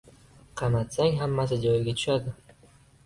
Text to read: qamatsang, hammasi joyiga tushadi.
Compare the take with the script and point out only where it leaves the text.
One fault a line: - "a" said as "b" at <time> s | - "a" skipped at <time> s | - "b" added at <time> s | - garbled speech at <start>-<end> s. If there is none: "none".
none